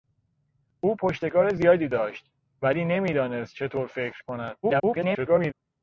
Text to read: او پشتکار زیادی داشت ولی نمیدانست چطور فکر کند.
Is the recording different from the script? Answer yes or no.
yes